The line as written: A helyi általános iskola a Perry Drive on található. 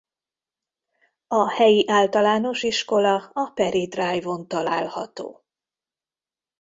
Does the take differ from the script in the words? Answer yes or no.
no